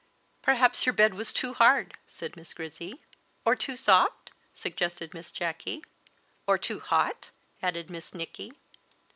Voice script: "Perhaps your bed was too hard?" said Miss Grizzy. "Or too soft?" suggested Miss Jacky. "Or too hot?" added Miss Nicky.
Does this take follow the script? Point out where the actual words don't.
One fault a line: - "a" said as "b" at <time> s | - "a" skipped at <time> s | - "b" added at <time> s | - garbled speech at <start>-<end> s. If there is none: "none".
none